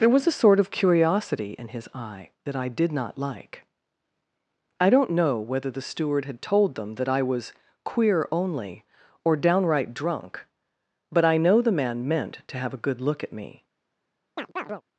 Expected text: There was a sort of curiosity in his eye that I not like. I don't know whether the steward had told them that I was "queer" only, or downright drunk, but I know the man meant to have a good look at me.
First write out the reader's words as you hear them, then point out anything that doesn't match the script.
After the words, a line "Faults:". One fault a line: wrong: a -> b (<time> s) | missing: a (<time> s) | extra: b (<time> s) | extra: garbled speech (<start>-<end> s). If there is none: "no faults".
There was a sort of curiosity in his eye that I did not like. I don't know whether the steward had told them that I was "queer" only, or downright drunk, but I know the man meant to have a good look at me.
Faults:
extra: did (2.7 s)